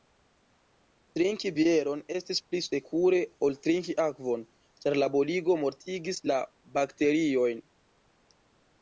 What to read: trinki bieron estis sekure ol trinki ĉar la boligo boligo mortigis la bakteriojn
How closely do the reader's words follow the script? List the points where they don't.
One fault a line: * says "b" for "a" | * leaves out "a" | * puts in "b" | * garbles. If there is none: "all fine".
* puts in "pli"
* puts in "akvon"
* leaves out "boligo"